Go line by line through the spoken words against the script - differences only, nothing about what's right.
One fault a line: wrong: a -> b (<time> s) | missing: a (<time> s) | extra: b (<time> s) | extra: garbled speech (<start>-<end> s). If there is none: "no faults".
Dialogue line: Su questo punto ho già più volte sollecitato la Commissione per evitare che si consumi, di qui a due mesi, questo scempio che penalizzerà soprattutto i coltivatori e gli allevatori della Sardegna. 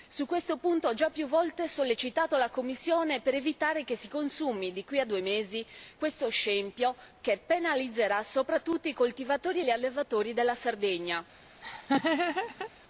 no faults